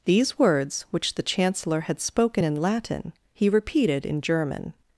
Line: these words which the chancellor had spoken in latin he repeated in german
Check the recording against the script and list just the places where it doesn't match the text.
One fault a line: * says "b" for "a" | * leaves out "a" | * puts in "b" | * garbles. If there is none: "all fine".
all fine